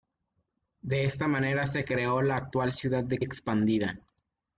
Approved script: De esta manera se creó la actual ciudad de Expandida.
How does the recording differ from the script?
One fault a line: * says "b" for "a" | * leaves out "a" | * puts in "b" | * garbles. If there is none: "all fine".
all fine